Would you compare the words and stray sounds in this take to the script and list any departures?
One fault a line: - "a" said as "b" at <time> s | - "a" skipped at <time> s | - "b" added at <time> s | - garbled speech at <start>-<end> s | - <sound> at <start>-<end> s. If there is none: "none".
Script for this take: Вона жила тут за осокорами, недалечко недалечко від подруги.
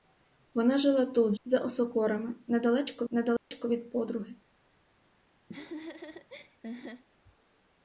- dropout at 3.4-3.5 s
- laugh at 5.5-7.0 s